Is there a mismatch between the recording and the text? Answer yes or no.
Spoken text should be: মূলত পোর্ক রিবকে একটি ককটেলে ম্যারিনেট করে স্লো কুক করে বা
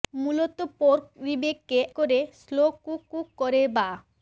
yes